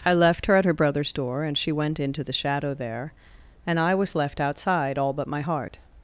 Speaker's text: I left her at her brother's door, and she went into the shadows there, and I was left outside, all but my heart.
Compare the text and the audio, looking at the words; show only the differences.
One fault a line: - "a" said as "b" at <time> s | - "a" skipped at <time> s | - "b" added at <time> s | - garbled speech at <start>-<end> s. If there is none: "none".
- "shadows" said as "shadow" at 2.3 s